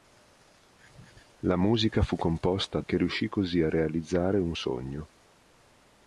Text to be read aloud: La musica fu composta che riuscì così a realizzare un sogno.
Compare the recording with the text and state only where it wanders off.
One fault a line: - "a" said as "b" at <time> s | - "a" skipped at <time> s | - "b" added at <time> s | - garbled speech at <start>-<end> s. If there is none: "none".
none